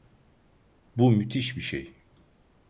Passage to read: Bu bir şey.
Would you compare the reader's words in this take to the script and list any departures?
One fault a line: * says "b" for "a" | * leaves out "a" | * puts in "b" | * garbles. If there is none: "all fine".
* puts in "müthiş"